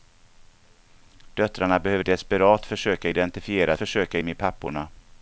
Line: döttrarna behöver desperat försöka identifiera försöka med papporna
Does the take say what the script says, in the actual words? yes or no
yes